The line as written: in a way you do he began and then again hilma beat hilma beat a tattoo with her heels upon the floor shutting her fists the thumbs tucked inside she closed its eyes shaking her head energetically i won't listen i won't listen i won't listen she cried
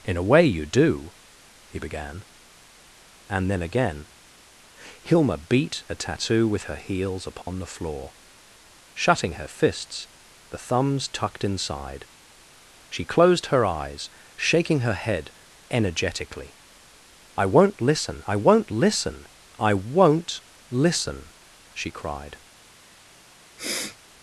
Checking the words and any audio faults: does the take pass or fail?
fail